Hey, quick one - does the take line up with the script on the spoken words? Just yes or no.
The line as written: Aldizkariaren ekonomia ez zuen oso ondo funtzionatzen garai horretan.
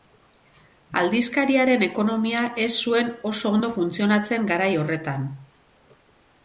yes